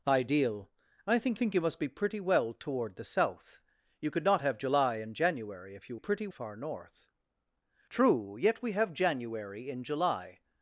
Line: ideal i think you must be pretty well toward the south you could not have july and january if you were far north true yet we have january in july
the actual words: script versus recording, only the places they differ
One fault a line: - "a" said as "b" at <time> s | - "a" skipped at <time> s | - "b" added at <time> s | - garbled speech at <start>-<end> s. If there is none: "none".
- "think" added at 1.3 s
- "were" said as "pretty" at 6.0 s